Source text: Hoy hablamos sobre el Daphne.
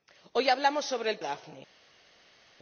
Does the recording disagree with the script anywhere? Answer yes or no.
no